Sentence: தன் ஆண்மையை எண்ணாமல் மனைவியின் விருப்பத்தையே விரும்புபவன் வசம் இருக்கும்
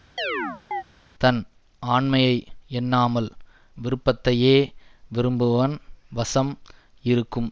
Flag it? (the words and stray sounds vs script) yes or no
yes